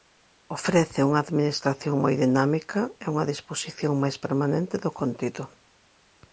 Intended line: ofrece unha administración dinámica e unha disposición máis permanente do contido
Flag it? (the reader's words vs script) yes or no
yes